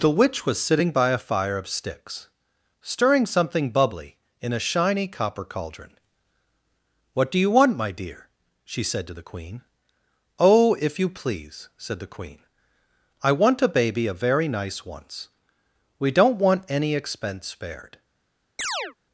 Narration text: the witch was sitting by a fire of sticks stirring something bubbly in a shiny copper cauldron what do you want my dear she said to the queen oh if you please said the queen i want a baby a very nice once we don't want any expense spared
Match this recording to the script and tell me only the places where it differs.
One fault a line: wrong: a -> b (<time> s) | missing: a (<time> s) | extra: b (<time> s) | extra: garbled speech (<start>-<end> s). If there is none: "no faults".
no faults